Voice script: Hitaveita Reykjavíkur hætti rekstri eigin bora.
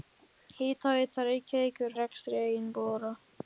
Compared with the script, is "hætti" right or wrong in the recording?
wrong